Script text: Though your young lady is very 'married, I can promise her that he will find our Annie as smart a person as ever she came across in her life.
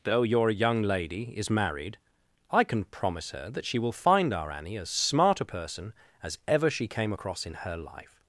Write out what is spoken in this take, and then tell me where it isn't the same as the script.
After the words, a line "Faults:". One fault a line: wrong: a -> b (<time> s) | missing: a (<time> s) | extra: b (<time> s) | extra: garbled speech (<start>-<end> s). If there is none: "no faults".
Though your young lady is 'married, I can promise her that she will find our Annie as smart a person as ever she came across in her life.
Faults:
missing: very (1.5 s)
wrong: he -> she (3.6 s)